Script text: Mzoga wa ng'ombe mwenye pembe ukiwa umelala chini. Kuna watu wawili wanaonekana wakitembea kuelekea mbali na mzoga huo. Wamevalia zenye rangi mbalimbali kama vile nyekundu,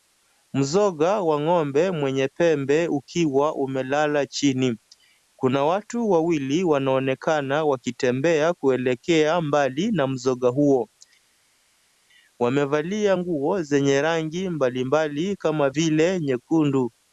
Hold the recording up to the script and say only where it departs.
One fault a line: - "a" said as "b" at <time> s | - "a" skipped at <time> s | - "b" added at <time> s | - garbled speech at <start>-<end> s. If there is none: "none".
- "nguo" added at 13.1 s